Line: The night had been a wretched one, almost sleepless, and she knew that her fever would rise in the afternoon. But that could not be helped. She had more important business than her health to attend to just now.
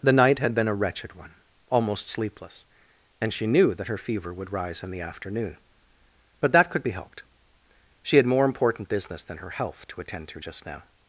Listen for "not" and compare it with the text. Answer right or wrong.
wrong